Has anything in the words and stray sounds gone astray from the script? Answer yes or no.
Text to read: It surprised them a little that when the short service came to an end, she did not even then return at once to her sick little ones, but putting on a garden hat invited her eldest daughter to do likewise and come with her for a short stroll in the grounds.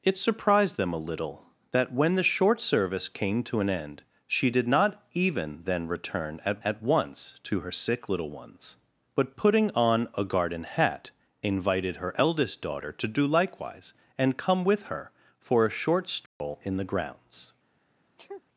yes